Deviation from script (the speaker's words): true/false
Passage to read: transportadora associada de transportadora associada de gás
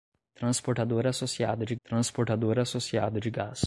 false